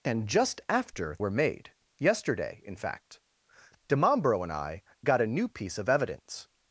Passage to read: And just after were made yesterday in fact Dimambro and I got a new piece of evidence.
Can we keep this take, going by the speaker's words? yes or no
yes